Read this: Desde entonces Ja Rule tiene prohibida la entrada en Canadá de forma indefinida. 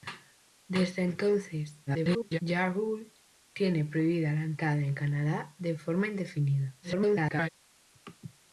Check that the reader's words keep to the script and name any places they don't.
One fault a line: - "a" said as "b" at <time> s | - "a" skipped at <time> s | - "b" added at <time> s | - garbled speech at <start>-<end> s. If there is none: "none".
- garbled speech at 1.9-2.4 s
- garbled speech at 6.8-7.5 s